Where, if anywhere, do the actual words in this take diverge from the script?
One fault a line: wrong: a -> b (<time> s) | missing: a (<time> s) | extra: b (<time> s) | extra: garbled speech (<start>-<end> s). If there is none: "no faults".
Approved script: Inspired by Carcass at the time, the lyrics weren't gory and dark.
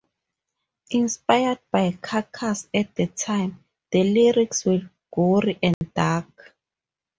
wrong: weren't -> were (4.6 s)